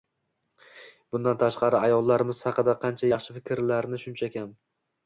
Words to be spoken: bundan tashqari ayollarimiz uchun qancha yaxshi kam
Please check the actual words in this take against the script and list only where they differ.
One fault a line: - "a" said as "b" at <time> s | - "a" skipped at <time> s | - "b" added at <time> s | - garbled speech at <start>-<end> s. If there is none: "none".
- "uchun" said as "haqida" at 2.5 s
- "fikrlarni shuncha" added at 3.4 s